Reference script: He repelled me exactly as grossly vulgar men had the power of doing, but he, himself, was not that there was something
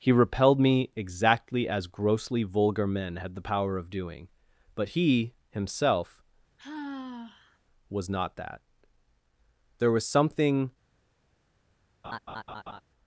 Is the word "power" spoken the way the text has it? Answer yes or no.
yes